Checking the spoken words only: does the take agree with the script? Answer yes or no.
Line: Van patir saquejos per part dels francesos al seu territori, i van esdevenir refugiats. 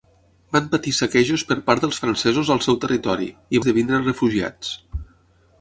no